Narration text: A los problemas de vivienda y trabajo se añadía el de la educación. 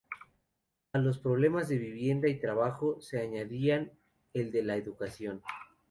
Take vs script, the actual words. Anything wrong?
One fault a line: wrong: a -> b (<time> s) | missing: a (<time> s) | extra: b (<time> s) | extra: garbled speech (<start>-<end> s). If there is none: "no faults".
no faults